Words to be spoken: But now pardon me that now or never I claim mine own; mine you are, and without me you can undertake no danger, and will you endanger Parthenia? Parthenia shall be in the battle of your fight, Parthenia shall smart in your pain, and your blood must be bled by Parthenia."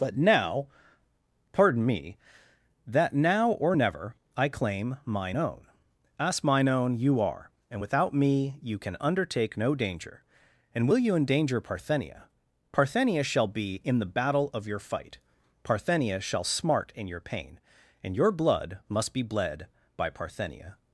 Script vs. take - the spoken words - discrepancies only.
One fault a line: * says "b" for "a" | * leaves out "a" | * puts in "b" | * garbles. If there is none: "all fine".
* puts in "as"
* puts in "own"